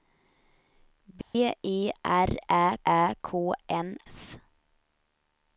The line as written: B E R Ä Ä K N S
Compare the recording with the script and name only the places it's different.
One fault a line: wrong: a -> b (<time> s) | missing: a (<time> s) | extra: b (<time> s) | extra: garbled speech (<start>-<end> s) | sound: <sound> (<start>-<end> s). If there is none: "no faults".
sound: dropout (1.2-1.3 s)